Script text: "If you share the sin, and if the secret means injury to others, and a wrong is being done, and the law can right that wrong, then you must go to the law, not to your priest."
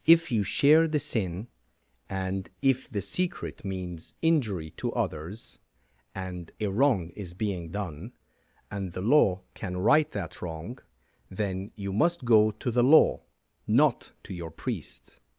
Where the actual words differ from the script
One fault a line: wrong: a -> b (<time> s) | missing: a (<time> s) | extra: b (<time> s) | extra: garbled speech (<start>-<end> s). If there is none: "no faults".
no faults